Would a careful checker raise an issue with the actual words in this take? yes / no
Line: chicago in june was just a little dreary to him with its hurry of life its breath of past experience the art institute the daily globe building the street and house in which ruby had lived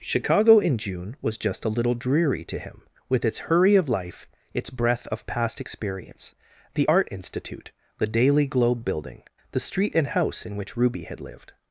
no